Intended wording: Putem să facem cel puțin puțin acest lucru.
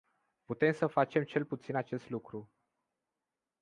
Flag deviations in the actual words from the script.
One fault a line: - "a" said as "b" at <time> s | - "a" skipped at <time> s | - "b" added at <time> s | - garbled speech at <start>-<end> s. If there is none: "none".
- "puțin" skipped at 1.7 s